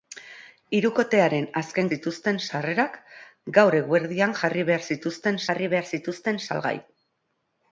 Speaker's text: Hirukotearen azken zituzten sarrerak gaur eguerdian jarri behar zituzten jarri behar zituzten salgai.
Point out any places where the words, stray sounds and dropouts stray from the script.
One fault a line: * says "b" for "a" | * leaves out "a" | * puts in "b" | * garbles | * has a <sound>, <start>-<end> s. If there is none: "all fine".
all fine